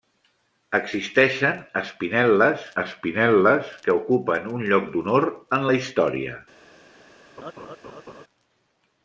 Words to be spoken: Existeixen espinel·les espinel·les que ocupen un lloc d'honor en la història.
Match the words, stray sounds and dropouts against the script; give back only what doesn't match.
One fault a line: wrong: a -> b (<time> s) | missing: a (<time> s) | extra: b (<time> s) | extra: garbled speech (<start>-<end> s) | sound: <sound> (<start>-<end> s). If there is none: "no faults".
sound: laugh (7.4-8.2 s)